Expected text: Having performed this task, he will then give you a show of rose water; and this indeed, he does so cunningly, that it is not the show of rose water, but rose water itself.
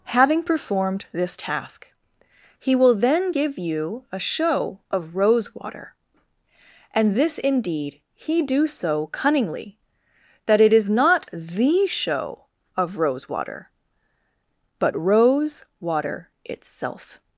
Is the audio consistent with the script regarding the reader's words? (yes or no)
no